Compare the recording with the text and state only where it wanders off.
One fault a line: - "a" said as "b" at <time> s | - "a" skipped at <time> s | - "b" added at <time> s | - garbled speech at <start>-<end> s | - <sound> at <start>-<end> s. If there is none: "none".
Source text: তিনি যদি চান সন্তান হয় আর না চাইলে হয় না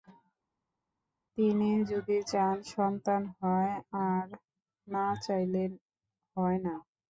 none